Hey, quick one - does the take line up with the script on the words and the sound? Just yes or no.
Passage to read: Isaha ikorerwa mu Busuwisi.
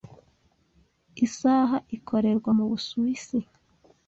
yes